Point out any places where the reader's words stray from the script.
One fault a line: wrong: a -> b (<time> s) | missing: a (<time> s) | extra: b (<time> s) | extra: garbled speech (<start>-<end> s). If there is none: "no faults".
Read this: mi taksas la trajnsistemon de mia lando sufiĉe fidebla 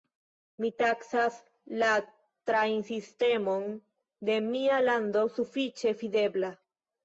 no faults